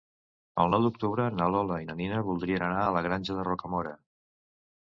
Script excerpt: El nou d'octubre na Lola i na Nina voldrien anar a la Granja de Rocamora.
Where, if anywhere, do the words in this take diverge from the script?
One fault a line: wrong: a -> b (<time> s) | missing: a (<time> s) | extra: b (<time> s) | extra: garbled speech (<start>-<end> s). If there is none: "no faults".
no faults